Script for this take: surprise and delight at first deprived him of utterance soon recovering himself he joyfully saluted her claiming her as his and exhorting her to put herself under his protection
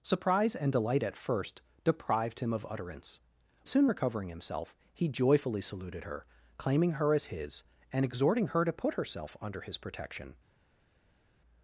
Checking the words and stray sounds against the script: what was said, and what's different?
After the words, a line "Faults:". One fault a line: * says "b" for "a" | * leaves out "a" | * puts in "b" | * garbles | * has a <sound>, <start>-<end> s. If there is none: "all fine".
surprise and delight at first deprived him of utterance soon recovering himself he joyfully saluted her claiming her as his and exhorting her to put herself under his protection
Faults:
all fine